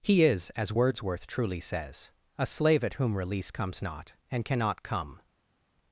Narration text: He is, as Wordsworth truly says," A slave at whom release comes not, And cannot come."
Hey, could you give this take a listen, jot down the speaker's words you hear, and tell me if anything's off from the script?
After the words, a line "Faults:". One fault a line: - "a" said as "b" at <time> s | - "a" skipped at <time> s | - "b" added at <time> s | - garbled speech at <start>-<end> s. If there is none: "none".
He is, as Wordsworth truly says," A slave at whom release comes not, And cannot come."
Faults:
none